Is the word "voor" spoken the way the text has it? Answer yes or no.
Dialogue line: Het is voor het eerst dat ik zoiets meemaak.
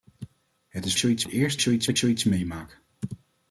no